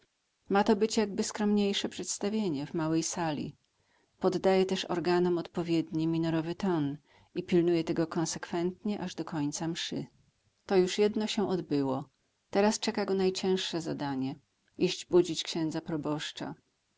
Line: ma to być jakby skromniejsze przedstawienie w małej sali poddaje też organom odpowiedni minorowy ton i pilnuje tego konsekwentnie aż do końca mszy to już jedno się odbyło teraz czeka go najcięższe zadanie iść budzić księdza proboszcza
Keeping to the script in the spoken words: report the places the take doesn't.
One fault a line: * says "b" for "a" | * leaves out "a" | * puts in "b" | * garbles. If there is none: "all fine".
all fine